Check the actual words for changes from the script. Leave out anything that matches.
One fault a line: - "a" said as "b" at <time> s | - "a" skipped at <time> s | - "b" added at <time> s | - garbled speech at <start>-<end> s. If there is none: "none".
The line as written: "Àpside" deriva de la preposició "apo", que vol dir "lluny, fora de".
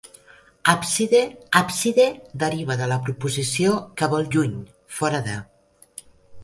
- "àpside" added at 1.6 s
- "apo" skipped at 3.8 s
- "dir" skipped at 4.3 s